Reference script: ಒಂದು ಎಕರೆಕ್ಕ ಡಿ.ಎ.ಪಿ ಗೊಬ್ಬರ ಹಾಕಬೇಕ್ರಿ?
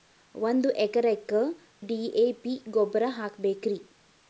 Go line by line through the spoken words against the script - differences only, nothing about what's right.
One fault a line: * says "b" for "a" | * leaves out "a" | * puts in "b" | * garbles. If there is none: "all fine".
all fine